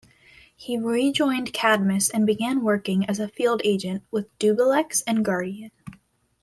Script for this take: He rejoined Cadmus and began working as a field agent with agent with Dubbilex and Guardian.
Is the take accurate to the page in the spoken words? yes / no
no